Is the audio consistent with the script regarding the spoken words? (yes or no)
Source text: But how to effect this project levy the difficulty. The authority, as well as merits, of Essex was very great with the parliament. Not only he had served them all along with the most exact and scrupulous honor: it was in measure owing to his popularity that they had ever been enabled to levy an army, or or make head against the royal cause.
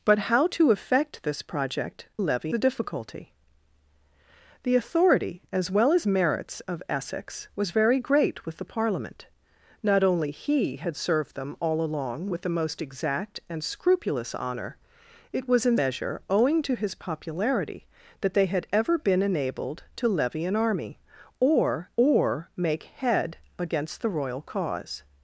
yes